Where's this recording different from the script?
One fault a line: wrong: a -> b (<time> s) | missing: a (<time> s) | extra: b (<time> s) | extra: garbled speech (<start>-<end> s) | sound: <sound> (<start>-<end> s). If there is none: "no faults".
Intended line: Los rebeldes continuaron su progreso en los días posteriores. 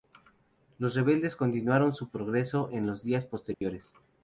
sound: dropout (3.5-3.6 s)